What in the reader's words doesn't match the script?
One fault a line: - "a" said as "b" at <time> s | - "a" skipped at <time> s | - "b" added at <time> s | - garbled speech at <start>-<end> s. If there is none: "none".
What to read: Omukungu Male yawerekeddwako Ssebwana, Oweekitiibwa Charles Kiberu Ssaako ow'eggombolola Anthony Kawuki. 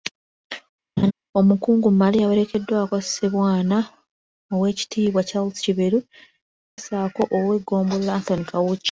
none